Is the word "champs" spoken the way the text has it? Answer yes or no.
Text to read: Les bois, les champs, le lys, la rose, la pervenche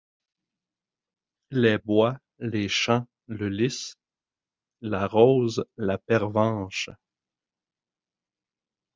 yes